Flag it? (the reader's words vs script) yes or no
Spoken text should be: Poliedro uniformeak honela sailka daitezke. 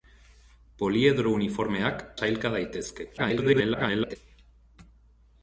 yes